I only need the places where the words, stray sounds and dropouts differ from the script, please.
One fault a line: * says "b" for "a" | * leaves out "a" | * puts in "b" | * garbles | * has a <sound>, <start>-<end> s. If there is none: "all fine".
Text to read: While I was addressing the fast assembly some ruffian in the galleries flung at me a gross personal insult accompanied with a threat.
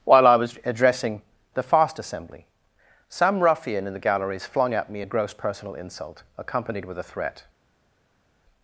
all fine